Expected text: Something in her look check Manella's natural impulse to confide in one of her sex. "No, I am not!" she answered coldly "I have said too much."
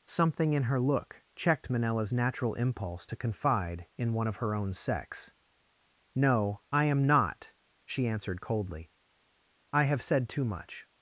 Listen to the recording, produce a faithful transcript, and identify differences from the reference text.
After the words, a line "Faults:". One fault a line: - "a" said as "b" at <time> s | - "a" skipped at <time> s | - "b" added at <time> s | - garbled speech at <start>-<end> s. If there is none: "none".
Something in her look checked Manella's natural impulse to confide in one of her own sex. "No, I am not!" she answered coldly "I have said too much."
Faults:
- "check" said as "checked" at 1.4 s
- "own" added at 4.5 s